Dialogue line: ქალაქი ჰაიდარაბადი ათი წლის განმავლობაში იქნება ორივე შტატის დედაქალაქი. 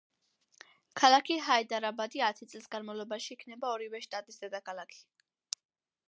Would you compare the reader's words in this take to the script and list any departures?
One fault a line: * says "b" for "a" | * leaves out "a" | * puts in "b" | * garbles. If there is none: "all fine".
all fine